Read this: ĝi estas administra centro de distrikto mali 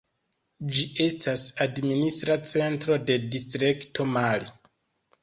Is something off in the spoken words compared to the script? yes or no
no